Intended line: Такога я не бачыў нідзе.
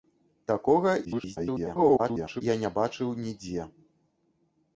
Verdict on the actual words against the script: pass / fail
fail